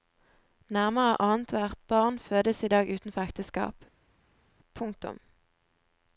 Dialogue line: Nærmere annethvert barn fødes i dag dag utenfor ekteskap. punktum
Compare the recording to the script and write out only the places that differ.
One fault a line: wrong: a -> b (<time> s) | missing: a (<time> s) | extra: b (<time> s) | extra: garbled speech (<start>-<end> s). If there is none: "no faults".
missing: dag (2.9 s)